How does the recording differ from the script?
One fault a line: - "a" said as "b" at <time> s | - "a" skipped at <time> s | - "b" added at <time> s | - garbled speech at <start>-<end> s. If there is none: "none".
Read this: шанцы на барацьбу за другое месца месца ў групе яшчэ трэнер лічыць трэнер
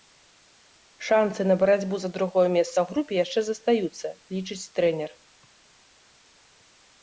- "месца" skipped at 2.7 s
- "трэнер" said as "застаюцца" at 3.5 s